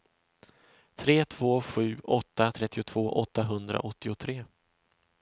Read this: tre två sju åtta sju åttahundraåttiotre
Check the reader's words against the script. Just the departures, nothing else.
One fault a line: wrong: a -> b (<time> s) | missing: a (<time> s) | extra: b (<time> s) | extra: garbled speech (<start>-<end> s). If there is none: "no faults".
wrong: sju -> trettiotvå (2.5 s)